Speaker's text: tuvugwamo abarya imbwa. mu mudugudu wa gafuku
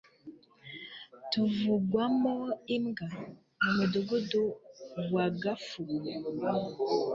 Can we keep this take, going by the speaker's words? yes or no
no